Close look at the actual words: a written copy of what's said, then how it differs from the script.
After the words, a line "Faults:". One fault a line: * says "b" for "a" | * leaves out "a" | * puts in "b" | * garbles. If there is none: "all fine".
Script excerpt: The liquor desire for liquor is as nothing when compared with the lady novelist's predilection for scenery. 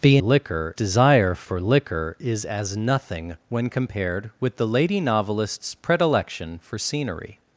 The liquor desire for liquor is as nothing when compared with the lady novelist's predilection for scenery.
Faults:
all fine